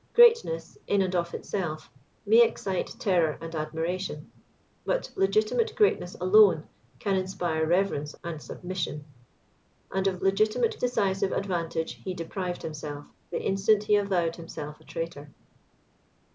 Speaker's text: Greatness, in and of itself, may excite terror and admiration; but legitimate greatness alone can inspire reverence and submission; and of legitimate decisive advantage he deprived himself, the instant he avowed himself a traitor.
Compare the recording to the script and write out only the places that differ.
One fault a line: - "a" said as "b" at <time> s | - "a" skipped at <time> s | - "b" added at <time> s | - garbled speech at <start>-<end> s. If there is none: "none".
none